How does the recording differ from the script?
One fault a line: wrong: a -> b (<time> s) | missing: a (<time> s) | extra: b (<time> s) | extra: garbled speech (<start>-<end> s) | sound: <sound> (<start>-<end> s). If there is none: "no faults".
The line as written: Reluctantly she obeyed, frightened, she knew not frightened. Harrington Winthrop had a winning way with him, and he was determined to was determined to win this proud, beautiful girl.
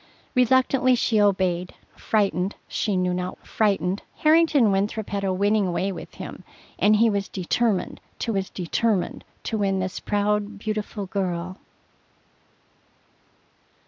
no faults